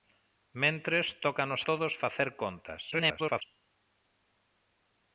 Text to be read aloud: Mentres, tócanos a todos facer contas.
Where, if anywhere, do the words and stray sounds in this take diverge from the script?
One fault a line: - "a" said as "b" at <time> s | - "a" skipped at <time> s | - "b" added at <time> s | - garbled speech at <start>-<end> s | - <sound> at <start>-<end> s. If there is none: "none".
- "a" skipped at 1.7 s
- garbled speech at 2.9-3.4 s